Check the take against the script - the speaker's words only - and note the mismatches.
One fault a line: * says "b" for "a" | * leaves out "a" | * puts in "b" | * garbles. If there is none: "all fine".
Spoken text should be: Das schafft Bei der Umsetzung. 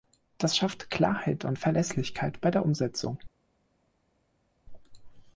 * puts in "Klarheit und Verlässlichkeit"